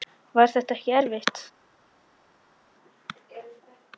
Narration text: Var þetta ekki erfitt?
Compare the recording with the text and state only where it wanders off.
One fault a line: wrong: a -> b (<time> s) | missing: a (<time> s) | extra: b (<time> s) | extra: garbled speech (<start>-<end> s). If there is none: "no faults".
no faults